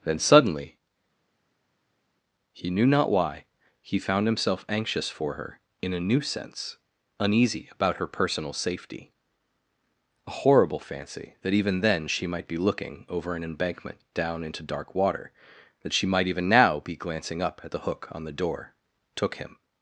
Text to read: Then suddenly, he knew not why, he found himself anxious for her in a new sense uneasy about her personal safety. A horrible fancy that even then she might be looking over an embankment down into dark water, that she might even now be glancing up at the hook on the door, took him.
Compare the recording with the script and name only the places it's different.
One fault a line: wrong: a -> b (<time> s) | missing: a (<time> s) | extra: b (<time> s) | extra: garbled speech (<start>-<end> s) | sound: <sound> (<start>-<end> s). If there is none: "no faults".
no faults